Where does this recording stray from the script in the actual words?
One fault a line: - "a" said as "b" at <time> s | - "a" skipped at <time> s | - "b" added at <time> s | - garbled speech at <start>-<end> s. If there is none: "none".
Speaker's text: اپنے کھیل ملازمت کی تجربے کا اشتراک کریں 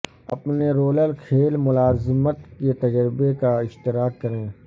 - "رولر" added at 0.7 s
- "کی" said as "کے" at 2.6 s